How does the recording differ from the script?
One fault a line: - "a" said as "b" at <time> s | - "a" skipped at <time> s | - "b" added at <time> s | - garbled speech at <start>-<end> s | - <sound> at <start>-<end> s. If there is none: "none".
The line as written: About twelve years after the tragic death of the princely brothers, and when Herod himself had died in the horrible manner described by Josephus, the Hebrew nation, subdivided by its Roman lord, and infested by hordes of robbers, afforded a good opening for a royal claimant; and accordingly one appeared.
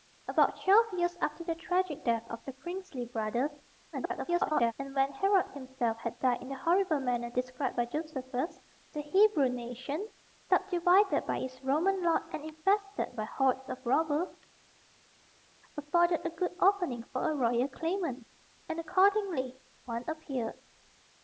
- garbled speech at 3.9-4.7 s